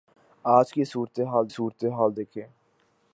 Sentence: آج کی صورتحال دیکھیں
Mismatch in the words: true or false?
true